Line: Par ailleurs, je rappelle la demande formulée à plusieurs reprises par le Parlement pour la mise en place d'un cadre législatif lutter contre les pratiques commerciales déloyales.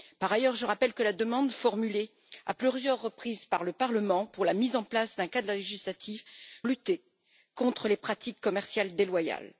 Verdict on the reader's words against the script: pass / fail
pass